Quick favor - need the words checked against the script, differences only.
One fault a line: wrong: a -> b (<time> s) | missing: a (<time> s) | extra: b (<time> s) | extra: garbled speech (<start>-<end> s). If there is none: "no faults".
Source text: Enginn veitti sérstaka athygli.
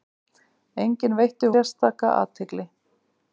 no faults